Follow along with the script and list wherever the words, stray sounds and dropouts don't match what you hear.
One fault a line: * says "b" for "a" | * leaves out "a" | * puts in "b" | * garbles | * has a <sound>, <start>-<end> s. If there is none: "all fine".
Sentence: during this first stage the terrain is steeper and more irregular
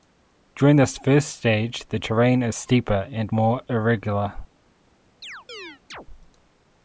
* has a chirp, 5.2-6.1 s